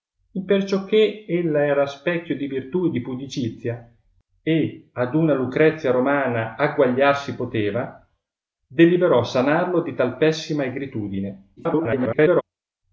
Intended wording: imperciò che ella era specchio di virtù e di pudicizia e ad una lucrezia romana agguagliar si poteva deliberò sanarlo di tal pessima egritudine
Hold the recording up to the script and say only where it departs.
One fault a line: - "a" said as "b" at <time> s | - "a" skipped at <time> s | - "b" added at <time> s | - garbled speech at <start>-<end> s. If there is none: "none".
- garbled speech at 11.6-12.4 s